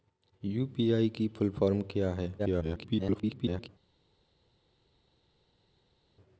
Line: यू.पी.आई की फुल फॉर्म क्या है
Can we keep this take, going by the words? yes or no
no